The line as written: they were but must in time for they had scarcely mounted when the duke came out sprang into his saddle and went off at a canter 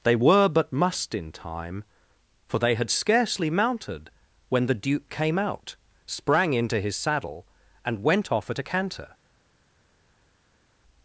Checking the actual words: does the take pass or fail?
pass